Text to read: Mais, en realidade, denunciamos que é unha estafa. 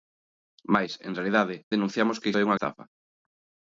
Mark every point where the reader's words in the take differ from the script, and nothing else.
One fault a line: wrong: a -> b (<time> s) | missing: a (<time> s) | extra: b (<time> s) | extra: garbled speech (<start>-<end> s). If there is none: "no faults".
no faults